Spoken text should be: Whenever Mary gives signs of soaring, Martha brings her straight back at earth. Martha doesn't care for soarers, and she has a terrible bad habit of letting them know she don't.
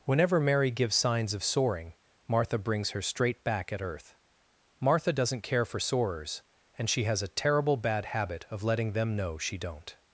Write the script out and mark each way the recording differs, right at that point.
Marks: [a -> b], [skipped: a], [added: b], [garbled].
Whenever Mary gives signs of soaring, Martha brings her straight back at earth. Martha doesn't care for soarers, and she has a terrible bad habit of letting them know she don't.